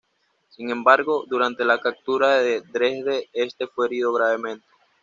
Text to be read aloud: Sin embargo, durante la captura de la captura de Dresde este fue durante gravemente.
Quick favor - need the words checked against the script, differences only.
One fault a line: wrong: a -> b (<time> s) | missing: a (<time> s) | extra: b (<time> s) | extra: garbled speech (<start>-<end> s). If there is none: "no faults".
missing: la captura de (2.6 s)
wrong: durante -> herido (3.9 s)